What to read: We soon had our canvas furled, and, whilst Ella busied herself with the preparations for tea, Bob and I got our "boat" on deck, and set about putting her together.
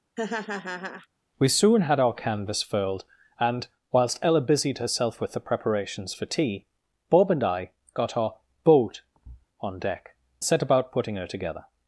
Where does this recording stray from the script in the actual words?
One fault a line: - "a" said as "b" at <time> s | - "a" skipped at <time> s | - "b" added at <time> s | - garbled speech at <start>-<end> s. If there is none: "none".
- "and" skipped at 10.1 s